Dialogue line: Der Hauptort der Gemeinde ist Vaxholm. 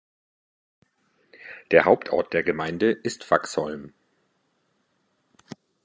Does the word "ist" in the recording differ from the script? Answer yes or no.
no